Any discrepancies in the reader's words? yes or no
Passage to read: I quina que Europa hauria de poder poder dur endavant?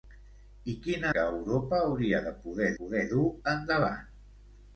no